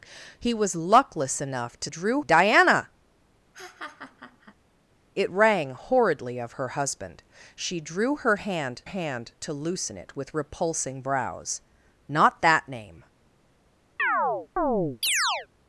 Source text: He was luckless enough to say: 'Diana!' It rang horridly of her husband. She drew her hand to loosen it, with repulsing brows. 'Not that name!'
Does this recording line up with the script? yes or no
no